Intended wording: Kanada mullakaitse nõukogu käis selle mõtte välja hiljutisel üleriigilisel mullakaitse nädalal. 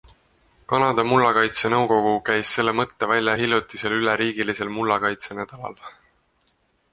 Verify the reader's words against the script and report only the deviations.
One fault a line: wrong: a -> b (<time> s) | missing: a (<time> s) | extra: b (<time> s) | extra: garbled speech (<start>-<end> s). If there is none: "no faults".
no faults